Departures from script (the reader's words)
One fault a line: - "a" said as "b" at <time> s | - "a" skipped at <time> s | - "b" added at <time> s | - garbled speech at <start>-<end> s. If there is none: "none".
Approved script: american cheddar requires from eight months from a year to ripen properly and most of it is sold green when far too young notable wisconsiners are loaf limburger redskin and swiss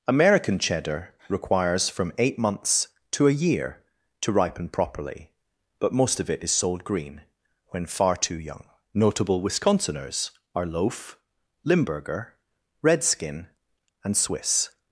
- "from" said as "to" at 3.1 s
- "and" said as "but" at 5.8 s